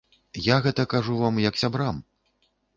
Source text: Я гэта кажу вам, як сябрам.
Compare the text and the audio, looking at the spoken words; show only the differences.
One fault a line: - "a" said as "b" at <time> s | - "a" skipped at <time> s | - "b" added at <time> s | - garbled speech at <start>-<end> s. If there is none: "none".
none